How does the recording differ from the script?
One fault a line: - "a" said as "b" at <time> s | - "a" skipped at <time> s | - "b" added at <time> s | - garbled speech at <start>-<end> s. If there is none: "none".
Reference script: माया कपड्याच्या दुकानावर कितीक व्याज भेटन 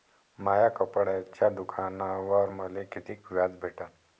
- "मले" added at 2.5 s